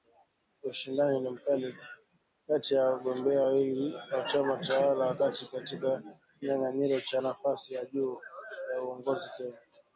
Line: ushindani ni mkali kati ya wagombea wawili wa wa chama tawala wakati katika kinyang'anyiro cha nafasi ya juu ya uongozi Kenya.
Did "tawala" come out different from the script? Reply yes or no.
no